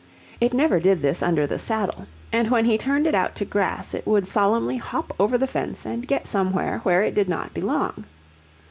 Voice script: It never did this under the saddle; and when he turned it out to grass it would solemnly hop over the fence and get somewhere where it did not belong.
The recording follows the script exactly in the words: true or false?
true